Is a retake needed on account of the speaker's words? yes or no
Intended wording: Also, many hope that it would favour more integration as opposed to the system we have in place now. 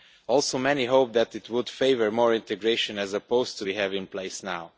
yes